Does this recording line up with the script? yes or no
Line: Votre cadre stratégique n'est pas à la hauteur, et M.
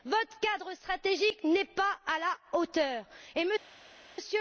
yes